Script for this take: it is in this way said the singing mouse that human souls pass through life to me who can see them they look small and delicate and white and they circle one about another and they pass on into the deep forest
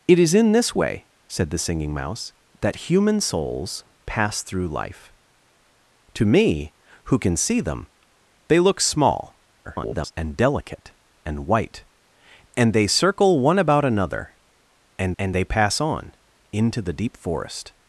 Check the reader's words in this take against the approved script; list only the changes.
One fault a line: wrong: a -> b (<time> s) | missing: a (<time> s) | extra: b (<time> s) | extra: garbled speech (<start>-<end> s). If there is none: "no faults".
extra: garbled speech (9.6-10.1 s)
extra: and (15.2 s)